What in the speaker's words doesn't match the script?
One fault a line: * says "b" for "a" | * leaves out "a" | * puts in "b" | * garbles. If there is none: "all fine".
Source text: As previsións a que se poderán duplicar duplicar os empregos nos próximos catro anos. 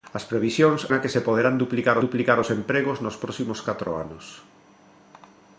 all fine